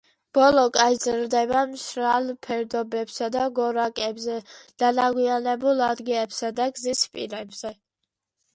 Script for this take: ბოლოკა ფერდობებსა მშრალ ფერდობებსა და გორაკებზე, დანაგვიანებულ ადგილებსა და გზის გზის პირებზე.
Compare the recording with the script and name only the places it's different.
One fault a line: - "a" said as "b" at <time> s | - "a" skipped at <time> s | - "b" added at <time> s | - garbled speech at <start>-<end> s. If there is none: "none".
- "ფერდობებსა" said as "იზრდება" at 0.9 s
- "გზის" skipped at 7.1 s